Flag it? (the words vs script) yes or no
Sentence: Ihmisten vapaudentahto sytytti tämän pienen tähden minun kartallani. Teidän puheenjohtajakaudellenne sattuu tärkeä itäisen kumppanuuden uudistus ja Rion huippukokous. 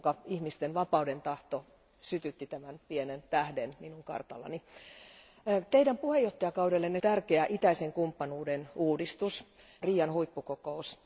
yes